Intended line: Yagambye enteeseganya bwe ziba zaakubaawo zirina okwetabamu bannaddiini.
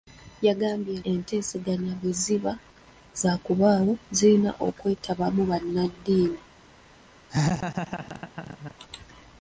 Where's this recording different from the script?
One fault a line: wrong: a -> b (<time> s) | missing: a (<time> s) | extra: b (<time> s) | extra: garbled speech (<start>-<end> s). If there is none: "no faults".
no faults